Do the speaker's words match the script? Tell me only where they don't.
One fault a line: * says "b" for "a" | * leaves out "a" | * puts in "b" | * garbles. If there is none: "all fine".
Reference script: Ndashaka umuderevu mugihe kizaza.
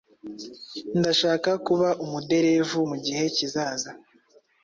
* puts in "kuba"